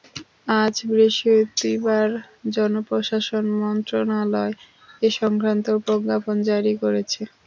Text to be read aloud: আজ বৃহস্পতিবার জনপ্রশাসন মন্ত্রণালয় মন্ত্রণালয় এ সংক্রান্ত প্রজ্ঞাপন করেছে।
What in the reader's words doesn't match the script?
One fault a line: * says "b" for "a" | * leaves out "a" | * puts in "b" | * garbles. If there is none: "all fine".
* leaves out "মন্ত্রণালয়"
* puts in "জারি"